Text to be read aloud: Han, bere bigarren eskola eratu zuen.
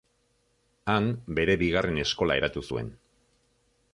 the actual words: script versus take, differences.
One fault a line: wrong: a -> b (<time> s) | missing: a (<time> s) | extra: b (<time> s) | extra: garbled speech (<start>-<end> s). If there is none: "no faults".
no faults